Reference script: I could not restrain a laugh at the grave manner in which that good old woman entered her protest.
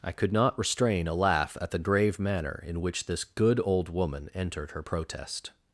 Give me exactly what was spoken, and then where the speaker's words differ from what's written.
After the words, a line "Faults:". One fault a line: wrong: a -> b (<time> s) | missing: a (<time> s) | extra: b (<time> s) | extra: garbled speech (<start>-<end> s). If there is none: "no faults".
I could not restrain a laugh at the grave manner in which this good old woman entered her protest.
Faults:
wrong: that -> this (3.0 s)